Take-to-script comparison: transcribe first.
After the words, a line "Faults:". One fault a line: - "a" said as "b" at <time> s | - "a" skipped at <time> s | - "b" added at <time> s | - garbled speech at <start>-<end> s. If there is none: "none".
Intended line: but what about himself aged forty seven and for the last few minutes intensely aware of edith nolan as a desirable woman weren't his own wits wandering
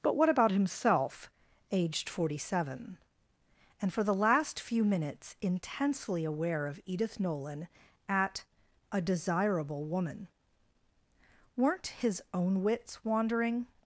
but what about himself aged forty seven and for the last few minutes intensely aware of edith nolan at a desirable woman weren't his own wits wandering
Faults:
- "as" said as "at" at 8.1 s